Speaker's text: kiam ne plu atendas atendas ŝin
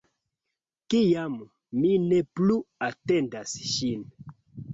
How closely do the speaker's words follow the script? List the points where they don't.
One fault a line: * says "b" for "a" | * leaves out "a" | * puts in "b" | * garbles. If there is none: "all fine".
* puts in "mi"
* leaves out "atendas"